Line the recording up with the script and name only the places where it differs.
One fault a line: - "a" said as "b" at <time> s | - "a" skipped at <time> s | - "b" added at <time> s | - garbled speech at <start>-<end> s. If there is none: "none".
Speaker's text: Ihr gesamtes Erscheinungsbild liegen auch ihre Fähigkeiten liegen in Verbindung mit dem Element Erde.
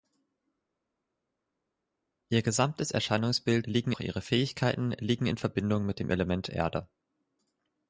none